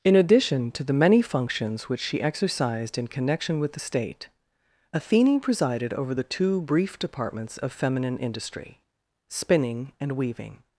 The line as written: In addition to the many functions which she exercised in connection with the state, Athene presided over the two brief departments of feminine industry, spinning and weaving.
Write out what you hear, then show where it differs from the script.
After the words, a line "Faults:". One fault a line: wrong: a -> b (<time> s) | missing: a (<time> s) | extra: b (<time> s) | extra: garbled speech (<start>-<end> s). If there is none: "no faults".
In addition to the many functions which she exercised in connection with the state, Athene presided over the two brief departments of feminine industry, spinning and weaving.
Faults:
no faults